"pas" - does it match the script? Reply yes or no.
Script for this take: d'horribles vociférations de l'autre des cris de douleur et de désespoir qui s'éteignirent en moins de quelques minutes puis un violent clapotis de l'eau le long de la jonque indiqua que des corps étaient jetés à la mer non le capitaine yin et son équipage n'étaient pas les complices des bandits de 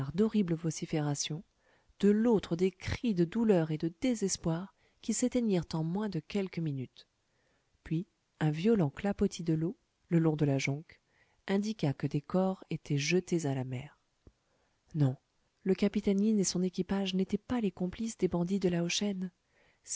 yes